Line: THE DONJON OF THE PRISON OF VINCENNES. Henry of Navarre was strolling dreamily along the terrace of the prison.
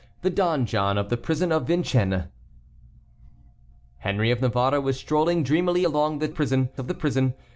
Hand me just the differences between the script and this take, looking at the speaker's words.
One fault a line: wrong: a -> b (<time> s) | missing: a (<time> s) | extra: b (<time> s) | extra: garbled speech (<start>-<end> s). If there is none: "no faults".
wrong: terrace -> prison (6.3 s)